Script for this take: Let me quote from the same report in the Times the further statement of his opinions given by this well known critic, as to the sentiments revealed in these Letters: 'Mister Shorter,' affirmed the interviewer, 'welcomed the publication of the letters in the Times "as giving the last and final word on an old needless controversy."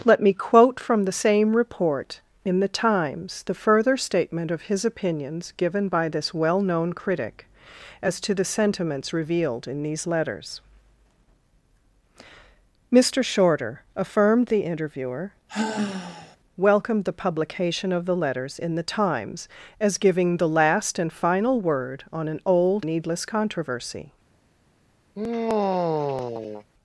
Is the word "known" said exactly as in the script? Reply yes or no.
yes